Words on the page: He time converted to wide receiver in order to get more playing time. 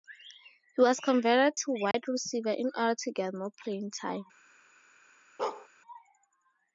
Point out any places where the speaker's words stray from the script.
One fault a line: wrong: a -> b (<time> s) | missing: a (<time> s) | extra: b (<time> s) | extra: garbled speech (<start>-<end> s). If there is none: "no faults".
wrong: time -> was (0.8 s)